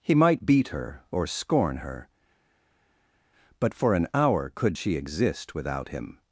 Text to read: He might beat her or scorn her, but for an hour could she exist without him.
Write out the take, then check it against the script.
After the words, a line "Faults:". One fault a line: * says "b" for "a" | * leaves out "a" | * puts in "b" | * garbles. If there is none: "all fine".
He might beat her or scorn her, but for an hour could she exist without him.
Faults:
all fine